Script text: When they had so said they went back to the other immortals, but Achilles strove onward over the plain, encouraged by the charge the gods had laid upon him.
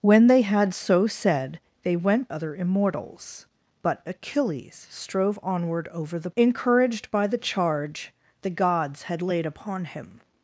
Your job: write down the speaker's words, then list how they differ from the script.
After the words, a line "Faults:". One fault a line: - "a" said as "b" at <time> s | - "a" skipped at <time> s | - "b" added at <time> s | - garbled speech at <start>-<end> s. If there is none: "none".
When they had so said they went other immortals, but Achilles strove onward over the encouraged by the charge the gods had laid upon him.
Faults:
- "back to the" skipped at 2.3 s
- "plain" skipped at 6.3 s